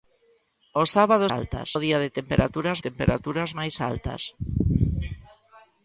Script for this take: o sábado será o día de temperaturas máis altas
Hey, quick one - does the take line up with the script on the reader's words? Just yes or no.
no